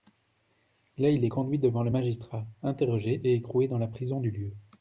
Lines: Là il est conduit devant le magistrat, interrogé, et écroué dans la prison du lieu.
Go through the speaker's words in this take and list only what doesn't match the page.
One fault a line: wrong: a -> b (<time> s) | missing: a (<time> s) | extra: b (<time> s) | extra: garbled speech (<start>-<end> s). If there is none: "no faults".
no faults